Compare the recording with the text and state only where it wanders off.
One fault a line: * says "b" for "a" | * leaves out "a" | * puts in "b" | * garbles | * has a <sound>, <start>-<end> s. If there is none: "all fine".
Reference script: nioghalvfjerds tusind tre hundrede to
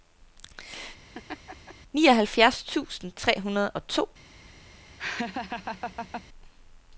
* has a laugh, 1.1-1.7 s
* puts in "og"
* has a laugh, 5.0-6.2 s